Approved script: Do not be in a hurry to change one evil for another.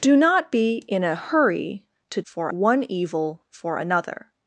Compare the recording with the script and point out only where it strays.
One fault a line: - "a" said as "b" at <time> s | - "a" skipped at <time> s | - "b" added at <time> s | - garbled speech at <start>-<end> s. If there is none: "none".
- "change" said as "for" at 2.2 s